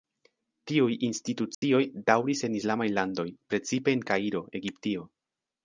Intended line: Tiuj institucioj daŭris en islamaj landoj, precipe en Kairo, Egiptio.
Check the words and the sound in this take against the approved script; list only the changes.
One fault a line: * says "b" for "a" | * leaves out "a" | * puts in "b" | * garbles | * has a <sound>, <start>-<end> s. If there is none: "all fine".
* has a dropout, 1.5-1.6 s